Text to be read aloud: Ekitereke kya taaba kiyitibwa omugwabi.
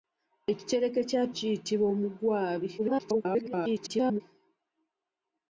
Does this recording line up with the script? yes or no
no